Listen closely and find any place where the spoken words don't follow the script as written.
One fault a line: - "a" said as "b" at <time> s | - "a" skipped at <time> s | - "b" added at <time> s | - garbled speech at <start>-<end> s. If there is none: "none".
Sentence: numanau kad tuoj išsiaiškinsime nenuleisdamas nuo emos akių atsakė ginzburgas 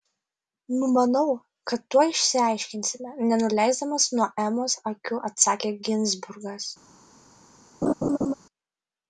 none